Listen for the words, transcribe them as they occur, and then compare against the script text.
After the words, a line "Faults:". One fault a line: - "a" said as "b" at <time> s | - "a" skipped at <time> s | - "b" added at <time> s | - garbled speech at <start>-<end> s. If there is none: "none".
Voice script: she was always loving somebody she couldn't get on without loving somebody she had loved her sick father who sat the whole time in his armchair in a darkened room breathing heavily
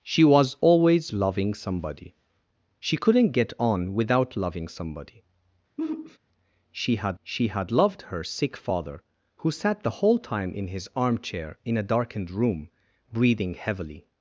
she was always loving somebody she couldn't get on without loving somebody she had she had loved her sick father who sat the whole time in his armchair in a darkened room breathing heavily
Faults:
- "she had" added at 7.2 s